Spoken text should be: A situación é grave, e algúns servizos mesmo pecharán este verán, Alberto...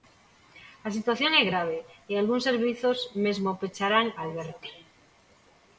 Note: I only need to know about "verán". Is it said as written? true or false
false